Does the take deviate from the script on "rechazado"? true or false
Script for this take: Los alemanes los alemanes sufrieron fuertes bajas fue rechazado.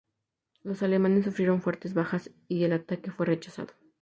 false